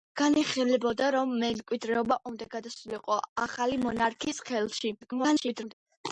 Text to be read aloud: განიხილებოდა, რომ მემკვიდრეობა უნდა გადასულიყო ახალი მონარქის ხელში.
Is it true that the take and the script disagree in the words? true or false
true